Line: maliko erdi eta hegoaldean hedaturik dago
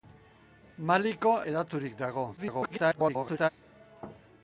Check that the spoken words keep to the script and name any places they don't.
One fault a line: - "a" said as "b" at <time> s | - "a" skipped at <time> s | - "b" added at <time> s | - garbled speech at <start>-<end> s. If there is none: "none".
- "erdi eta hegoaldean" skipped at 1.4 s
- garbled speech at 2.4-3.5 s